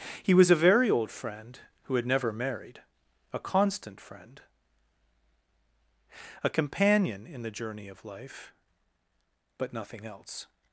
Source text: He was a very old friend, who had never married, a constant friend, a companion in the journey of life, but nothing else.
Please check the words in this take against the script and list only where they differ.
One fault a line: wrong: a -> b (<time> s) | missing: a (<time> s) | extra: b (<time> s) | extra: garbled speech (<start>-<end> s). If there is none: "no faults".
no faults